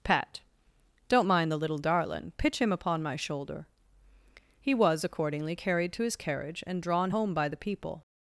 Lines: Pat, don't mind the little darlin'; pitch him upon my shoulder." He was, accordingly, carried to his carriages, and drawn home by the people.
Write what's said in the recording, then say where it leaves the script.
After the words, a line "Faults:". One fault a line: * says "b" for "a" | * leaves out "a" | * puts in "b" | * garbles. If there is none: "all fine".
Pat, don't mind the little darlin'; pitch him upon my shoulder." He was, accordingly, carried to his carriage, and drawn home by the people.
Faults:
* says "carriage" for "carriages"